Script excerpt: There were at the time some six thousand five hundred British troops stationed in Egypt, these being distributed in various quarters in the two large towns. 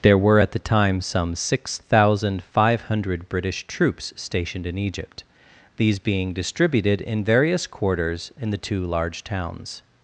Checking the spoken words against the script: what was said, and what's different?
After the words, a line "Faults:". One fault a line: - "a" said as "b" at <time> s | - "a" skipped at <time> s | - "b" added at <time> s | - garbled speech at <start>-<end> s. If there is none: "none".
There were at the time some six thousand five hundred British troops stationed in Egypt, these being distributed in various quarters in the two large towns.
Faults:
none